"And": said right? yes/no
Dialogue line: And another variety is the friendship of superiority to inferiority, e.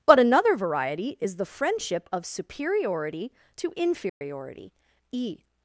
no